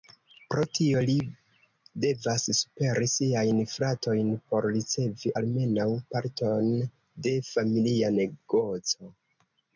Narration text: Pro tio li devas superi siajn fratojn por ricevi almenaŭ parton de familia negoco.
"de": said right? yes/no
yes